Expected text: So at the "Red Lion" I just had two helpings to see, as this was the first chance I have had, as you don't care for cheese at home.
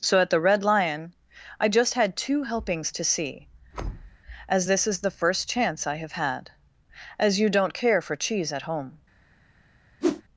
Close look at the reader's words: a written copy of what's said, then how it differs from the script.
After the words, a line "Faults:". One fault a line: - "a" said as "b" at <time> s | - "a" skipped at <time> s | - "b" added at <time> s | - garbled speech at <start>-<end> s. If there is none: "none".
So at the "Red Lion" I just had two helpings to see, as this is the first chance I have had, as you don't care for cheese at home.
Faults:
- "was" said as "is" at 4.9 s